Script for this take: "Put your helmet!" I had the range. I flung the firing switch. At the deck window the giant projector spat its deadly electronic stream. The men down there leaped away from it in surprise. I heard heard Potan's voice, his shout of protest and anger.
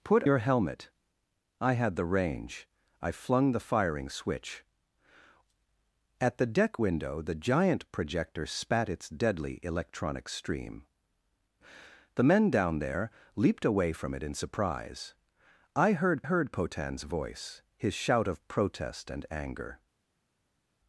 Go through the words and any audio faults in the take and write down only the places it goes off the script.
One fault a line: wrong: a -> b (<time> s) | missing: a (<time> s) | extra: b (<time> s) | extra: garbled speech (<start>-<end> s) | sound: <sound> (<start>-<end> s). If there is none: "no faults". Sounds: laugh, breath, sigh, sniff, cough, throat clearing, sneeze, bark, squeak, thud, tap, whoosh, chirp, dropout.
no faults